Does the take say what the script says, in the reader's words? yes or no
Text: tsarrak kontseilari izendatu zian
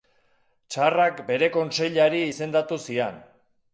no